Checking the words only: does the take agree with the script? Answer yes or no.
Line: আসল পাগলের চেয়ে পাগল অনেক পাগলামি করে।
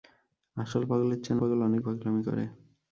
yes